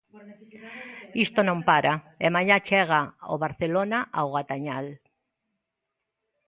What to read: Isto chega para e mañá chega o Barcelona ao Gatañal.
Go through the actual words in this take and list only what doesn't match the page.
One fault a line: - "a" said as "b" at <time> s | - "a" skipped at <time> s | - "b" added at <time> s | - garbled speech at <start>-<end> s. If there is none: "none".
- "chega" said as "non" at 1.5 s